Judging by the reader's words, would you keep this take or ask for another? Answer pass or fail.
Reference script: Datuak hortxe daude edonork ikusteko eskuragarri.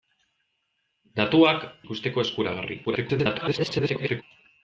fail